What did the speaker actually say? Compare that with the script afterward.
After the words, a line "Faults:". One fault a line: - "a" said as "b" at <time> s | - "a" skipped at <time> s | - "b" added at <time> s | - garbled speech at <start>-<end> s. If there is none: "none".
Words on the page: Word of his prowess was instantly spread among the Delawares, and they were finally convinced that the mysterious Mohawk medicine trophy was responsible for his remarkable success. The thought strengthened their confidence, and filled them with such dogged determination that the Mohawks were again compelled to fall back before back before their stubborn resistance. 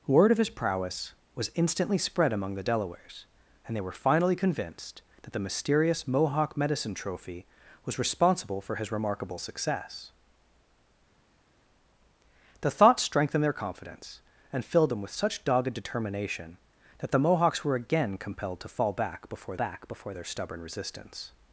Word of his prowess was instantly spread among the Delawares, and they were finally convinced that the mysterious Mohawk medicine trophy was responsible for his remarkable success. The thought strengthened their confidence, and filled them with such dogged determination that the Mohawks were again compelled to fall back before back before their stubborn resistance.
Faults:
none